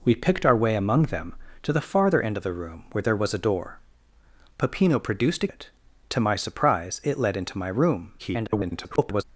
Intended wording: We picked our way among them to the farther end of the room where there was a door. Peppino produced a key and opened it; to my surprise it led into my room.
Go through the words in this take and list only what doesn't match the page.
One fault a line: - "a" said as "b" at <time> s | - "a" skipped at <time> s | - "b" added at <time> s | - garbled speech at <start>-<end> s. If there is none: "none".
- "key and opened" skipped at 5.5 s
- garbled speech at 8.2-9.2 s